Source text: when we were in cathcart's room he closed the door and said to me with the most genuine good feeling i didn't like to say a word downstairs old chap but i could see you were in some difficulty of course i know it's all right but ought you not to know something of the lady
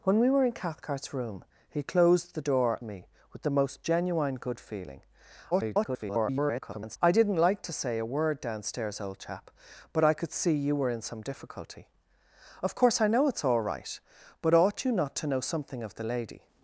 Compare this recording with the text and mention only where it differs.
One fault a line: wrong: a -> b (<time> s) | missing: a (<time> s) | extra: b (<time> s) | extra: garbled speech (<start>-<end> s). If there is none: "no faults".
missing: and said to (2.8 s)
extra: garbled speech (5.5-7.0 s)